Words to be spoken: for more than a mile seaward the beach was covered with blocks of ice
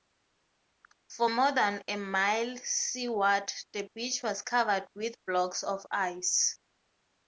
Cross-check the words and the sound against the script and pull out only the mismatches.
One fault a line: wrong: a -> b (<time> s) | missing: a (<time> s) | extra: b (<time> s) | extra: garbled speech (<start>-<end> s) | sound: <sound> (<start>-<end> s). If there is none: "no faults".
no faults